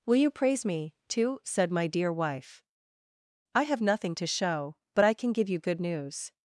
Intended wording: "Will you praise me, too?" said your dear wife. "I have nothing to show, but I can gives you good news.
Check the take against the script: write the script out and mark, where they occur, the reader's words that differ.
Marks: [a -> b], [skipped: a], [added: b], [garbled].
"Will you praise me, too?" said [your -> my] dear wife. "I have nothing to show, but I can [gives -> give] you good news.